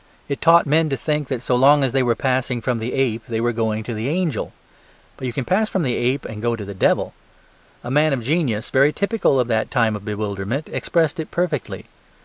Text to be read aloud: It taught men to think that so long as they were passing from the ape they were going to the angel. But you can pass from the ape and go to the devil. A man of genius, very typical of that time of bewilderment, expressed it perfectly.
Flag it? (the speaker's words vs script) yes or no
no